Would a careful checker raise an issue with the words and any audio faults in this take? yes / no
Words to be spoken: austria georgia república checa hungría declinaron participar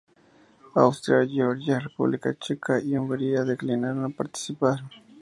yes